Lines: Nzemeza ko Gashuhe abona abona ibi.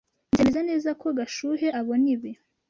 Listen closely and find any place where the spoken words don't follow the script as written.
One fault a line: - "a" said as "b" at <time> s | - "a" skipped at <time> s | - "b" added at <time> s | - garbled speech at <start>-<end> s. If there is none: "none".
- "neza" added at 0.7 s
- "abona" skipped at 2.1 s